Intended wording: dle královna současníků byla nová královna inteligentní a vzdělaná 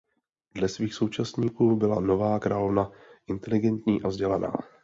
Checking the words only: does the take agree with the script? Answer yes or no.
no